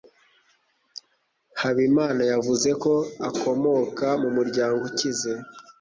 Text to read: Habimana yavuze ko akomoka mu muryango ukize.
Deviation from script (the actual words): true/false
false